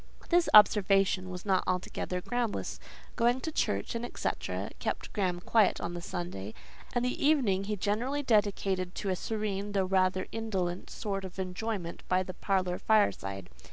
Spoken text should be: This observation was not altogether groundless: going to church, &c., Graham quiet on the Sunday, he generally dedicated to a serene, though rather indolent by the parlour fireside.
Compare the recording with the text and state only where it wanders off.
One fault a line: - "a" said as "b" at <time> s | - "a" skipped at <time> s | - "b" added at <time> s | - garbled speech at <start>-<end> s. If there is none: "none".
- "kept" added at 4.8 s
- "and the evening" added at 6.9 s
- "sort of enjoyment" added at 10.9 s